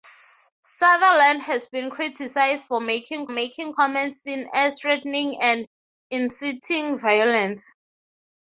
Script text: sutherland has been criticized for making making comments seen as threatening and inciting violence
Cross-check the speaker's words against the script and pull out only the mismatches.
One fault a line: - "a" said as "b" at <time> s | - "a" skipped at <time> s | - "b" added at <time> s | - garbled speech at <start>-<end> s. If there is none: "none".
none